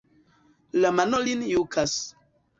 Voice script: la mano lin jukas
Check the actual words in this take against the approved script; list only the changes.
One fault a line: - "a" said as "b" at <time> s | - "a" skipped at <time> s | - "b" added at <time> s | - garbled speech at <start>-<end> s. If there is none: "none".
none